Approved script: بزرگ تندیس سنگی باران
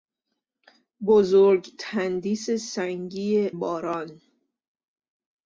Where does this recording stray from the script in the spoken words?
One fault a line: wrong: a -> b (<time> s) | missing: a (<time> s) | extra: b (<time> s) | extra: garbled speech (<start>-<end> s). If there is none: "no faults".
no faults